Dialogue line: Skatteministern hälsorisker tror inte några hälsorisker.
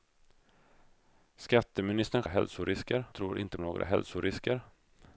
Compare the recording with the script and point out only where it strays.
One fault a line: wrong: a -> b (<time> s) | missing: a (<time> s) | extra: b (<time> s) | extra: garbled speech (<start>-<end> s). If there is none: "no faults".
no faults